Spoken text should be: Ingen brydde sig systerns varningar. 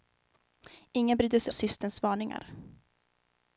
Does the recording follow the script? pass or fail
pass